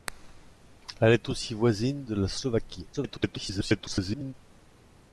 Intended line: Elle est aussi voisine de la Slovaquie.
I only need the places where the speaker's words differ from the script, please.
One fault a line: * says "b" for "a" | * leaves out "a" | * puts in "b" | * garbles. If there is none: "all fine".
* garbles